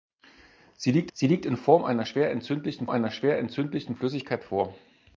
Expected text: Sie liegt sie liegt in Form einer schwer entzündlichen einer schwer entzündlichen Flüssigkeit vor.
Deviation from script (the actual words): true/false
false